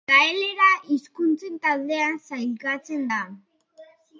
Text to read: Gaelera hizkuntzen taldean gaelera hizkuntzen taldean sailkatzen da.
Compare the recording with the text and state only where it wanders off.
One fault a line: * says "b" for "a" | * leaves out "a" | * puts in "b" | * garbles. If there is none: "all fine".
* leaves out "gaelera hizkuntzen taldean"